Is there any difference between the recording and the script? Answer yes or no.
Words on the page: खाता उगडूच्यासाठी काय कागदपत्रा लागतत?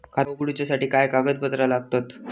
no